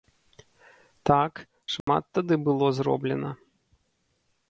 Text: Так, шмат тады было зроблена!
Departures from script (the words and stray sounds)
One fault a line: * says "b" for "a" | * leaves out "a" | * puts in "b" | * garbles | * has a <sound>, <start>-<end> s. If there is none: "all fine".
* has a dropout, 1.8-1.9 s